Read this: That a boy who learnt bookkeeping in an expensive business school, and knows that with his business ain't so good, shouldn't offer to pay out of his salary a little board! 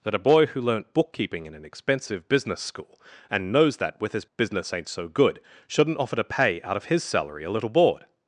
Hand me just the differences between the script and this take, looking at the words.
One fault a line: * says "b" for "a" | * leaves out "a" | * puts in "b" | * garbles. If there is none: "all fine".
all fine